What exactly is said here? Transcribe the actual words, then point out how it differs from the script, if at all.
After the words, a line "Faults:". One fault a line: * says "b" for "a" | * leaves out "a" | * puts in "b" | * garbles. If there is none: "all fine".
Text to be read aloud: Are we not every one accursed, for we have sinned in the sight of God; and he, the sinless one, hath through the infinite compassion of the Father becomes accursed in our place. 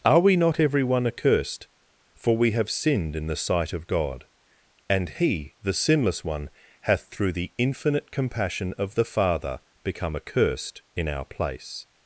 Are we not every one accursed, for we have sinned in the sight of God; and he, the sinless one, hath through the infinite compassion of the Father become accursed in our place.
Faults:
* says "become" for "becomes"